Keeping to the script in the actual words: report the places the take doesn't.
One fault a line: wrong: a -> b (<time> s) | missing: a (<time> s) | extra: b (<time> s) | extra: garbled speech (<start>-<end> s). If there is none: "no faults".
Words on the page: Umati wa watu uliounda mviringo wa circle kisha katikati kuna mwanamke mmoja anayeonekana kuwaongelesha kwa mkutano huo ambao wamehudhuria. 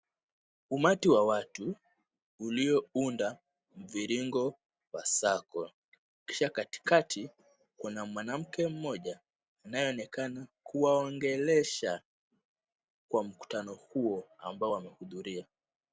no faults